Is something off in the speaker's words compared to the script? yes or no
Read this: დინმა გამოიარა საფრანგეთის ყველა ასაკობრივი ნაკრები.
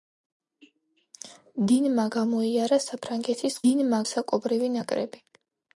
yes